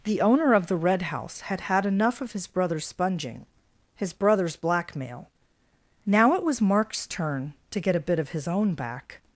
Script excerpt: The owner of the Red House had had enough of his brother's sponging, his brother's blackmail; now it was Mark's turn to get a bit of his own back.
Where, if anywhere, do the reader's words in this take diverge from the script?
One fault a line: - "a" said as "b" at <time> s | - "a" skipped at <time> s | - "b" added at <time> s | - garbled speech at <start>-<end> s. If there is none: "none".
none